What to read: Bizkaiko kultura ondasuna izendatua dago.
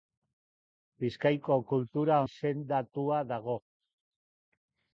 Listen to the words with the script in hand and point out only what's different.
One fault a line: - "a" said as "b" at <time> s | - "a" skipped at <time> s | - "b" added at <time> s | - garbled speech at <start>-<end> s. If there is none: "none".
- "ondasuna" skipped at 2.2 s